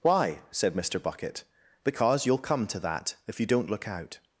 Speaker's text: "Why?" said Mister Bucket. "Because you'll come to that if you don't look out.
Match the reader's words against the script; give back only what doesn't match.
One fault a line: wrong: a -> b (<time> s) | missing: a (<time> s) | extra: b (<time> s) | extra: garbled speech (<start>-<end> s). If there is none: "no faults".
no faults